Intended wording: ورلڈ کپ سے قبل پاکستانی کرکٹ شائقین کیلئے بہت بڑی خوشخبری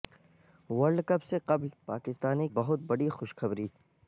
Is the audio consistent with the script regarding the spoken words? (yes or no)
no